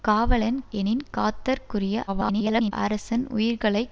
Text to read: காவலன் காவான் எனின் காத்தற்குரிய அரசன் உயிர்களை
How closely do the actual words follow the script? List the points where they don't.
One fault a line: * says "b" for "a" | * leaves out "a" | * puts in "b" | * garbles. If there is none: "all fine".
* leaves out "காவான்"
* garbles